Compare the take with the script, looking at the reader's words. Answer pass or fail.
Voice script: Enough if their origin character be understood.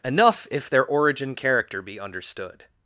pass